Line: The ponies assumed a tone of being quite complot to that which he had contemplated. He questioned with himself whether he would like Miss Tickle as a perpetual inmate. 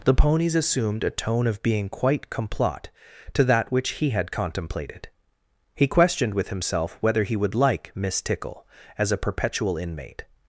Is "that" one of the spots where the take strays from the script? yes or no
no